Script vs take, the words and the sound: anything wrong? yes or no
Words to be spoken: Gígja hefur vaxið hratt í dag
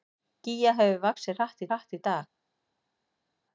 yes